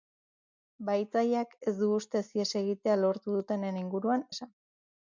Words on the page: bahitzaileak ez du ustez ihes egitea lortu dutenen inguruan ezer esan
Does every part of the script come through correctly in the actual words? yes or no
no